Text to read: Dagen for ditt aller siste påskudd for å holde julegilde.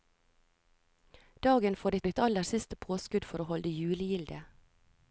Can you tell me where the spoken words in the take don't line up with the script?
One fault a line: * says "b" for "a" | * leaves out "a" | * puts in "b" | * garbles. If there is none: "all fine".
* puts in "ditt"